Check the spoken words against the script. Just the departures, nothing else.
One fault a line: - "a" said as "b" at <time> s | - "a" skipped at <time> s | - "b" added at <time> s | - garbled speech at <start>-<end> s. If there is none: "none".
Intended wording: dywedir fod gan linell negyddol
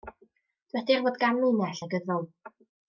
none